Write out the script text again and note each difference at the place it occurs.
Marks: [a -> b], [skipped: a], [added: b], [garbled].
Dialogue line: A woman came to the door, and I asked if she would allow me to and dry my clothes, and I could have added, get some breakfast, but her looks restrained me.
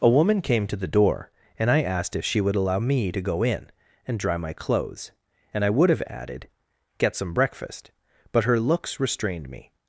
A woman came to the door, and I asked if she would allow me to [added: go in] and dry my clothes, and I [could -> would] have added, get some breakfast, but her looks restrained me.